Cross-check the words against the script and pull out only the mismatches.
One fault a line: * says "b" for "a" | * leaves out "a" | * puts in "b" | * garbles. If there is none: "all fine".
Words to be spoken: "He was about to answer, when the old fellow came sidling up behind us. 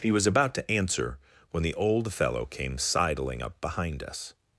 all fine